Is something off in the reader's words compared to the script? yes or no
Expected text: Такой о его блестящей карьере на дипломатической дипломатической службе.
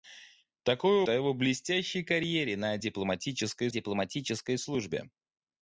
no